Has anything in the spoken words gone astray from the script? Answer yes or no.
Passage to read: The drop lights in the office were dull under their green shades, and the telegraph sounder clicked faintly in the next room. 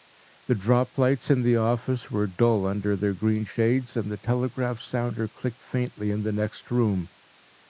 no